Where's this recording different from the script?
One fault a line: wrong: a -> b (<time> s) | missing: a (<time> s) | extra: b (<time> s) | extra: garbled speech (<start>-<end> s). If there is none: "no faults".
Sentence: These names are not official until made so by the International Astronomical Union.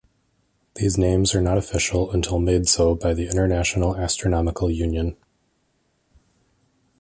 no faults